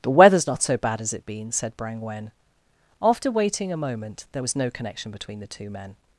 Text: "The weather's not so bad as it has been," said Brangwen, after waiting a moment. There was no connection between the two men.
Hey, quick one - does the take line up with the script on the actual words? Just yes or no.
no